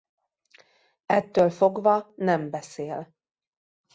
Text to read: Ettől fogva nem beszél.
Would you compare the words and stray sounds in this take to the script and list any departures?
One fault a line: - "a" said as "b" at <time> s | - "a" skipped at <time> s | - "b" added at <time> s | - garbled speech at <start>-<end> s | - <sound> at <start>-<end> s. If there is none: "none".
none